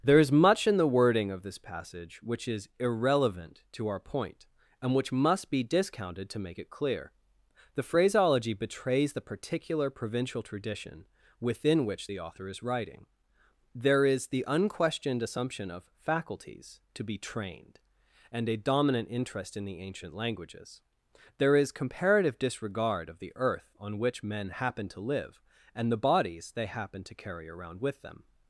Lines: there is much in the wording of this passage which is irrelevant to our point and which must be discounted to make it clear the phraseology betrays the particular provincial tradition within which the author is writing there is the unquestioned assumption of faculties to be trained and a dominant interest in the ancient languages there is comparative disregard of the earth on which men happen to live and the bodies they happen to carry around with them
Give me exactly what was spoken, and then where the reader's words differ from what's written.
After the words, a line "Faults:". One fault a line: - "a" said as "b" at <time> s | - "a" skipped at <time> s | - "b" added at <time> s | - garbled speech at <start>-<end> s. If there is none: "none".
there is much in the wording of this passage which is irrelevant to our point and which must be discounted to make it clear the phraseology betrays the particular provincial tradition within which the author is writing there is the unquestioned assumption of faculties to be trained and a dominant interest in the ancient languages there is comparative disregard of the earth on which men happen to live and the bodies they happen to carry around with them
Faults:
none